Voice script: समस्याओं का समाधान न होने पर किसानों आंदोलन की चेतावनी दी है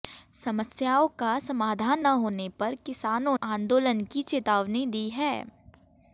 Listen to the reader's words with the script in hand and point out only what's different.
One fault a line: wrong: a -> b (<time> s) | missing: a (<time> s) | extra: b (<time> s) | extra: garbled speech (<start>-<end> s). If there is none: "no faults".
no faults